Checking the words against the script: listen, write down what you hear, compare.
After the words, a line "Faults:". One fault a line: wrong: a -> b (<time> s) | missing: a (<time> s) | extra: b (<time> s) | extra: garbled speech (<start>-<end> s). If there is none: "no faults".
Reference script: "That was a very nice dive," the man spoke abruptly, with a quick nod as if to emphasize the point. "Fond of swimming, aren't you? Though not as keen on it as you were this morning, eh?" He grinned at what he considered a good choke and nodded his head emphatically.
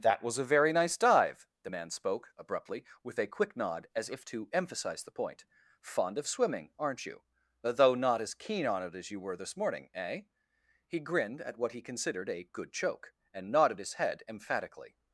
"That was a very nice dive," the man spoke abruptly, with a quick nod as if to emphasize the point. "Fond of swimming, aren't you? Though not as keen on it as you were this morning, eh?" He grinned at what he considered a good choke and nodded his head emphatically.
Faults:
no faults